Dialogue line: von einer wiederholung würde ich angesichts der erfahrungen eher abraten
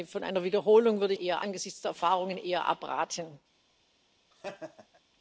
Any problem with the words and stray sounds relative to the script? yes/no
yes